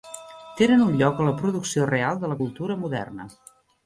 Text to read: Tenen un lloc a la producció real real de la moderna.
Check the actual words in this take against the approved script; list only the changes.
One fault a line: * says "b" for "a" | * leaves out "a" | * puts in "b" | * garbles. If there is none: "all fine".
* leaves out "real"
* puts in "cultura"